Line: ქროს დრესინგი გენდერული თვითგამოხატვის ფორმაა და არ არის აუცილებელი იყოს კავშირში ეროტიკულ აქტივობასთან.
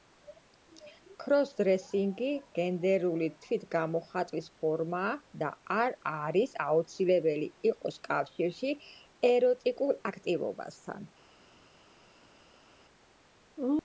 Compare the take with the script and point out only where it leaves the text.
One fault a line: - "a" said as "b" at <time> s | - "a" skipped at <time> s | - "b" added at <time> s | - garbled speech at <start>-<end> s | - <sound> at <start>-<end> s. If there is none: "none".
none